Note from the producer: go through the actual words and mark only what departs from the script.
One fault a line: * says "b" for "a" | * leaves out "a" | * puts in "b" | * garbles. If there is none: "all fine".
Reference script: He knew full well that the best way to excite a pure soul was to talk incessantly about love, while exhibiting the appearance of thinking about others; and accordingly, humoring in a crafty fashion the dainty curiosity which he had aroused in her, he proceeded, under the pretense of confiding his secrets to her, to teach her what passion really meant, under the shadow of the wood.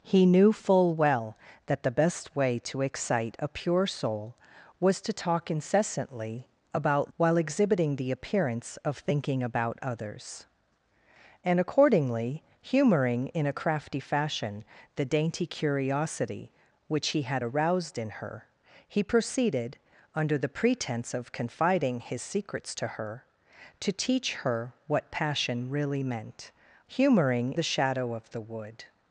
* leaves out "love"
* says "humoring" for "under"